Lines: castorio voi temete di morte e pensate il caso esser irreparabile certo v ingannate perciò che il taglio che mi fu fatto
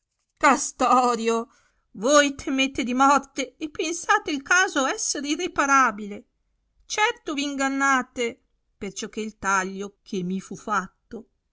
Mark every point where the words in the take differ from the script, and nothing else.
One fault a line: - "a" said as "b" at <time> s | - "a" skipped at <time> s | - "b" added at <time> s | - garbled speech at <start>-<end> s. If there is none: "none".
none